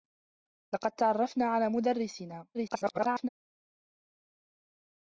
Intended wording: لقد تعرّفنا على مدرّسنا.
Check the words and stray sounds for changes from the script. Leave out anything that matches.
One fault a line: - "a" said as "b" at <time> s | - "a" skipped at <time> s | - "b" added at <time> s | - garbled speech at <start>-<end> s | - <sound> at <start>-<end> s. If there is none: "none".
- garbled speech at 2.5-3.3 s